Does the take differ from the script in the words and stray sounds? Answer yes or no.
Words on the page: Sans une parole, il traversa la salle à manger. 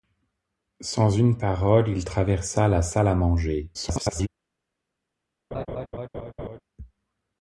yes